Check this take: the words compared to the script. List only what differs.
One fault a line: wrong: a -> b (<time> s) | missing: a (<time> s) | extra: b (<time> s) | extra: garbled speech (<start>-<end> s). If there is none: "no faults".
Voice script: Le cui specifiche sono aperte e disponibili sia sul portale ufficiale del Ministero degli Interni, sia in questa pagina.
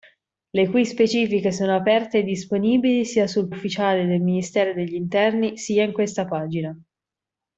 missing: portale (3.5 s)